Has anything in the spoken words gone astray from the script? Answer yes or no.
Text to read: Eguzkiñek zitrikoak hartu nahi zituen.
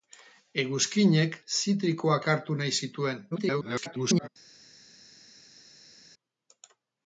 yes